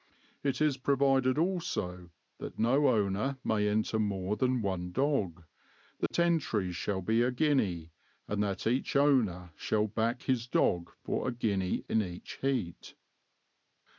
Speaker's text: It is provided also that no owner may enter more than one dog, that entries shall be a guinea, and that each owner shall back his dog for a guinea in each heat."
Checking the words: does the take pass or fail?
pass